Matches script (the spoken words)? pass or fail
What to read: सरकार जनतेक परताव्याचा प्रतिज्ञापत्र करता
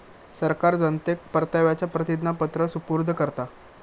fail